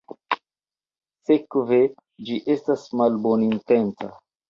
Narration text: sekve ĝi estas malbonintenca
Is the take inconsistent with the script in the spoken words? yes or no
no